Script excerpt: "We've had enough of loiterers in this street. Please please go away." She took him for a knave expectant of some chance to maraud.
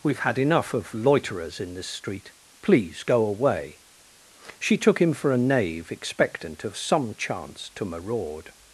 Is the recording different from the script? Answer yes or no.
yes